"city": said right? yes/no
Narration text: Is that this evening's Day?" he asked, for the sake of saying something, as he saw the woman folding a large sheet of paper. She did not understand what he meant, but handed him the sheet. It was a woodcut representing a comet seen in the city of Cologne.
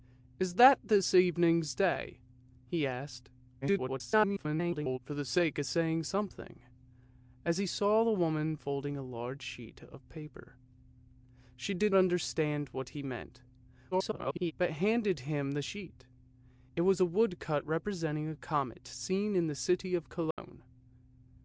yes